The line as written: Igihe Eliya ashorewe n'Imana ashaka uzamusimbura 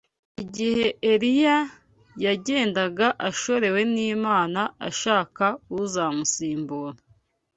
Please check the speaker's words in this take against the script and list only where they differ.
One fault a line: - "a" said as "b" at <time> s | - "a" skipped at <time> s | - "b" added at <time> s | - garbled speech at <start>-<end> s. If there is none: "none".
- "yagendaga" added at 2.2 s